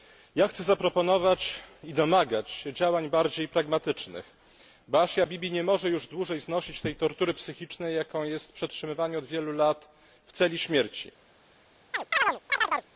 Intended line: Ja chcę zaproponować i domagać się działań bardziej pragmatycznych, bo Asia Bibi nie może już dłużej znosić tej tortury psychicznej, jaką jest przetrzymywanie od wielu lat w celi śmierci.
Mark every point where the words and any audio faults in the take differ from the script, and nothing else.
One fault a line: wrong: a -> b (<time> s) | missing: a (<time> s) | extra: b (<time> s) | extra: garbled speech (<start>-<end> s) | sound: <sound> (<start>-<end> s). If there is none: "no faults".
sound: chirp (11.9-12.9 s)